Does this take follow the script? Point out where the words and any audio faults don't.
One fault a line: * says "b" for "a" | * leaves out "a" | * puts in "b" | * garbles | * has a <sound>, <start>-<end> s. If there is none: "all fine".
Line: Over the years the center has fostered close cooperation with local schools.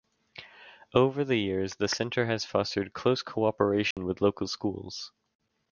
* has a dropout, 3.9-4.0 s